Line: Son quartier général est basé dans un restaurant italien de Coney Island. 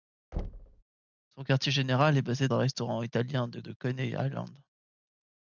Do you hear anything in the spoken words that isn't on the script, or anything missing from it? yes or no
yes